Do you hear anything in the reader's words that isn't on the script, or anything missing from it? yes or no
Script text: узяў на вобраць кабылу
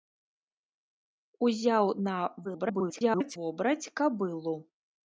yes